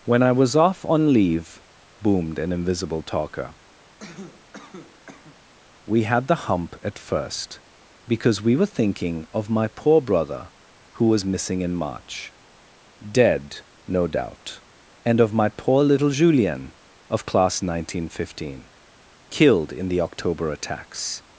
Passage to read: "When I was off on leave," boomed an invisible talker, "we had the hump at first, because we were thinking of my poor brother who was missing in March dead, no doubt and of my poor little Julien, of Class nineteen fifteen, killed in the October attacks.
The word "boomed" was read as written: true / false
true